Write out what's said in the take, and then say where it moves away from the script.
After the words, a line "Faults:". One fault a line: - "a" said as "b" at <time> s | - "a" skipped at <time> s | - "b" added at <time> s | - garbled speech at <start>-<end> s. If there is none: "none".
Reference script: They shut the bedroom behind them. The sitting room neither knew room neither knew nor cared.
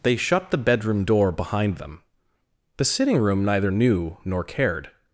They shut the bedroom door behind them. The sitting room neither knew nor cared.
Faults:
- "door" added at 1.1 s
- "room neither knew" skipped at 4.2 s